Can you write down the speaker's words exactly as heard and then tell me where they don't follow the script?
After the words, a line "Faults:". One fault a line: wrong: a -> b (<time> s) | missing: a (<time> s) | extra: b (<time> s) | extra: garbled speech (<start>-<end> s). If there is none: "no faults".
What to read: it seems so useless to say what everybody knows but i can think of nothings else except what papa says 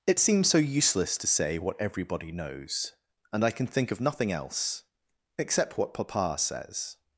it seems so useless to say what everybody knows and i can think of nothing else except what papa says
Faults:
wrong: but -> and (3.3 s)
wrong: nothings -> nothing (4.0 s)